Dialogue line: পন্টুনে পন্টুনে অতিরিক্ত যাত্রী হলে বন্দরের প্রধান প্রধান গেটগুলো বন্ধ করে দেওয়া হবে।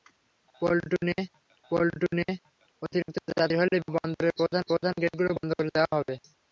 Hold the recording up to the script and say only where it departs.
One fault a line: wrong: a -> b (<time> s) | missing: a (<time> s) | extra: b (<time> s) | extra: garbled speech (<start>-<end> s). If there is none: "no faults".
no faults